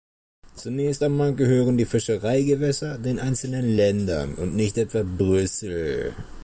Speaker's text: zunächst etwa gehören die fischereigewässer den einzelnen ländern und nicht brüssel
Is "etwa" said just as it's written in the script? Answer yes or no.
no